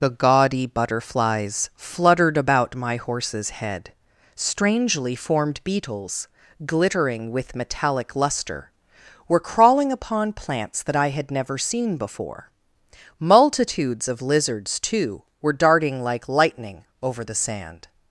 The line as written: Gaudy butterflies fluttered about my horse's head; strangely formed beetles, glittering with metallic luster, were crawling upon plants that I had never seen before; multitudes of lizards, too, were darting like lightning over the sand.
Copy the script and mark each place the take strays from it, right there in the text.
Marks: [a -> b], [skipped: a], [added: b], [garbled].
[added: the] Gaudy butterflies fluttered about my horse's head; strangely formed beetles, glittering with metallic luster, were crawling upon plants that I had never seen before; multitudes of lizards, too, were darting like lightning over the sand.